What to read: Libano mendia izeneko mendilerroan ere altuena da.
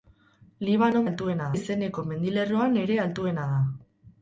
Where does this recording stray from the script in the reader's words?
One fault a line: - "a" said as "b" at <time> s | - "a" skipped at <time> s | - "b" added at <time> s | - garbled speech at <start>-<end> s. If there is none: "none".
- "mendia" said as "altuena" at 1.1 s